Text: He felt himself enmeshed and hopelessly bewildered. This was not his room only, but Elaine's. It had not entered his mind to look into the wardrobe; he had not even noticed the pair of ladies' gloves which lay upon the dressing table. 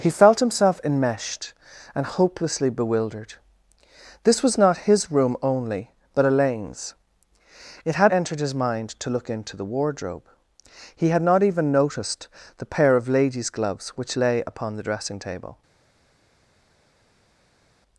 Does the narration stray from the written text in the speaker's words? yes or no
yes